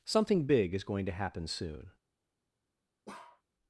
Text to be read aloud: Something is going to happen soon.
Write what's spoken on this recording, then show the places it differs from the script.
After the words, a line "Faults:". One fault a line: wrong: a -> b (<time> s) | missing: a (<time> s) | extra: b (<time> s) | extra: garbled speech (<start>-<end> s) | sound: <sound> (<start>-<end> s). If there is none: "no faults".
Something big is going to happen soon.
Faults:
extra: big (0.5 s)
sound: bark (3.1-3.4 s)